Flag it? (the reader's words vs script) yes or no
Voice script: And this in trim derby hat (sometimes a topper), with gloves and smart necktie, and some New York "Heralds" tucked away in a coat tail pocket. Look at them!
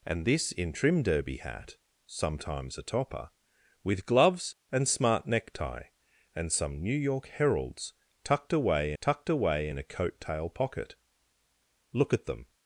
yes